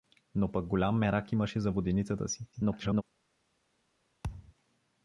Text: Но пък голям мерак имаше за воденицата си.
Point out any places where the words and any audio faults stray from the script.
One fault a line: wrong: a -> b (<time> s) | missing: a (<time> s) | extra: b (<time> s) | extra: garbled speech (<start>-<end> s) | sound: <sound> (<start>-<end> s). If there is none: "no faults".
extra: garbled speech (2.5-3.0 s)
sound: thud (4.2-4.5 s)